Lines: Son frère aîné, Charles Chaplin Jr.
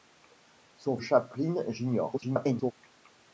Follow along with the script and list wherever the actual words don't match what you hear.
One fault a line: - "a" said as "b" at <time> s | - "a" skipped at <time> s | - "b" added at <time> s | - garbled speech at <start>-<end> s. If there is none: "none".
- "frère aîné Charles" skipped at 1.0 s
- garbled speech at 2.1-2.7 s